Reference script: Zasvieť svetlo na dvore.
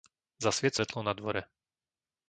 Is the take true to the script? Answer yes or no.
yes